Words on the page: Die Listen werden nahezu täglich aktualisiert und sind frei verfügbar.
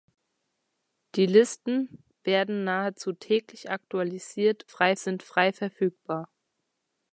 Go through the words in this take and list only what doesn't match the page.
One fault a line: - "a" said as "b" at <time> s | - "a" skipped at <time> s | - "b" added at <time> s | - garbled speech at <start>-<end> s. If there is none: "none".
- "und" said as "frei" at 4.7 s